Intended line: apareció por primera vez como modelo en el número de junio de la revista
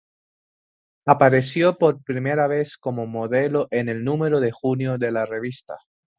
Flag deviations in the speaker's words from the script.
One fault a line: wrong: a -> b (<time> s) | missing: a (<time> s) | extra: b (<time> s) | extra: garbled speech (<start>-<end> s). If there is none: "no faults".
no faults